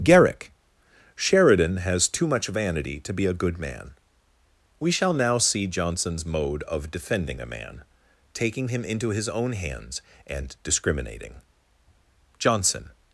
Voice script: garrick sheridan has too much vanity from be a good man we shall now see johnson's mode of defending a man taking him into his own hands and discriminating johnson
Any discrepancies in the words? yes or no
yes